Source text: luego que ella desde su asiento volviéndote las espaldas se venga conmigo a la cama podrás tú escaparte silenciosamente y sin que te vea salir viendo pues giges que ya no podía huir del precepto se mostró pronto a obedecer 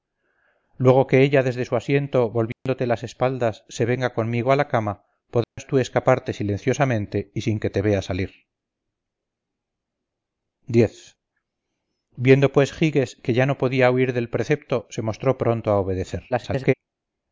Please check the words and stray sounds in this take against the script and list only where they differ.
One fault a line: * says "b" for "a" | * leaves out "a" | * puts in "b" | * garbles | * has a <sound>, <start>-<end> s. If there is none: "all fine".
* has a dropout, 2.5-2.7 s
* has a dropout, 5.4-5.6 s
* garbles